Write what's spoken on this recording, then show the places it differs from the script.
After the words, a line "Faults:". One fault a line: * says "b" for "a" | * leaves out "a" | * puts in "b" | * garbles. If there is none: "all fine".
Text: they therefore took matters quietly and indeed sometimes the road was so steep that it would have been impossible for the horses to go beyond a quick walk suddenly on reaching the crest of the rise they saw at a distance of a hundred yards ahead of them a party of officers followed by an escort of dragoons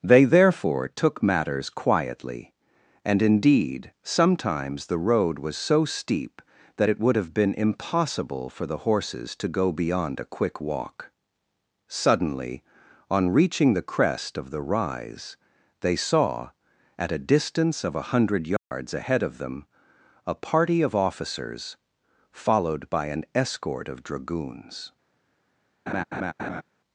they therefore took matters quietly and indeed sometimes the road was so steep that it would have been impossible for the horses to go beyond a quick walk suddenly on reaching the crest of the rise they saw at a distance of a hundred yards ahead of them a party of officers followed by an escort of dragoons
Faults:
all fine